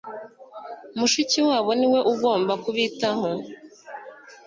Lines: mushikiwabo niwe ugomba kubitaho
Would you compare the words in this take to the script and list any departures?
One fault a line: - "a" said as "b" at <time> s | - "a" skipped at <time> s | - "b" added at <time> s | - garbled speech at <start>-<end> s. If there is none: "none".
none